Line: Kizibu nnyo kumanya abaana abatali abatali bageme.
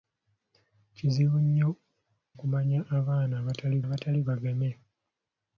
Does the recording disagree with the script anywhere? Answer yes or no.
no